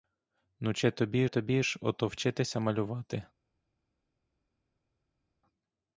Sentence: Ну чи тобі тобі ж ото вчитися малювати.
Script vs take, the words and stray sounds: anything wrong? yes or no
no